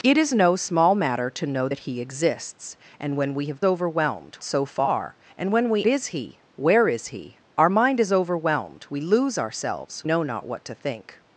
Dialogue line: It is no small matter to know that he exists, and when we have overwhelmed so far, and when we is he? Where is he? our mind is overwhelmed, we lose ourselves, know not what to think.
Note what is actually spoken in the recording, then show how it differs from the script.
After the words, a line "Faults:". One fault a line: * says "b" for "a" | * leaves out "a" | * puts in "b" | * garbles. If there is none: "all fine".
It is no small matter to know that he exists, and when we have overwhelmed so far, and when we is he? Where is he? our mind is overwhelmed, we lose ourselves, know not what to think.
Faults:
all fine